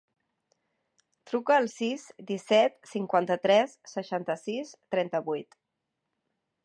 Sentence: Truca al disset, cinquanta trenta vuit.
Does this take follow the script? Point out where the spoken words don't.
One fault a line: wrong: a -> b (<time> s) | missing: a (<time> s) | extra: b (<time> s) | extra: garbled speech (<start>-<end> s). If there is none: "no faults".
extra: sis (1.7 s)
extra: tres seixanta sis (3.5 s)